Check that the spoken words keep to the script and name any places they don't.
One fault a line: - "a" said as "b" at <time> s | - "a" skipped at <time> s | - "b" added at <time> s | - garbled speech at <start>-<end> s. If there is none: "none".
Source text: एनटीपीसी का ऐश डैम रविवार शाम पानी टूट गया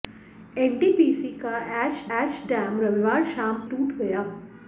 - "ऐश" added at 2.2 s
- "पानी" skipped at 3.7 s